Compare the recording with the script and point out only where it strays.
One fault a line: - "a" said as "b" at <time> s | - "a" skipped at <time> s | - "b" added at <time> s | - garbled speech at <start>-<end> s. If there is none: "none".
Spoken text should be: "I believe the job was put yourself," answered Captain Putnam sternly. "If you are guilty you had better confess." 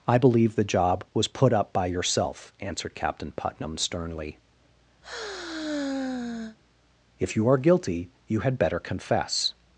- "up by" added at 1.5 s